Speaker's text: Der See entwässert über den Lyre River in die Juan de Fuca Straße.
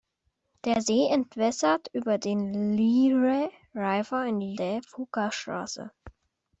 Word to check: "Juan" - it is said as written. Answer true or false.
false